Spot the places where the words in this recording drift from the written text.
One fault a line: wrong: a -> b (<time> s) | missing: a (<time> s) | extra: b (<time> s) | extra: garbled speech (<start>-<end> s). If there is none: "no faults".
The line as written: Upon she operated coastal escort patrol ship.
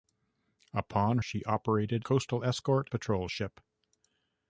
no faults